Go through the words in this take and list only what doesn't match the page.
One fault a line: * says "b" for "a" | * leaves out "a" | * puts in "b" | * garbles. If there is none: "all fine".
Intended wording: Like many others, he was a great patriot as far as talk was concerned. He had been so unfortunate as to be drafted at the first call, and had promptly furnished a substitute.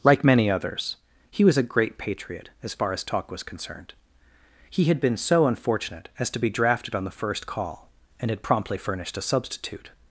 * says "on" for "at"